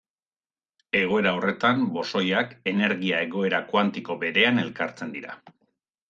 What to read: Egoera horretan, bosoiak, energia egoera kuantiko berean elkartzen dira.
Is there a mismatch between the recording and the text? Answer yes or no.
no